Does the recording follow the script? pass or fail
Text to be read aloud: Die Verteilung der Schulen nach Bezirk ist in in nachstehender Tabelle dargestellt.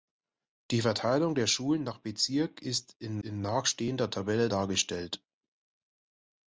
pass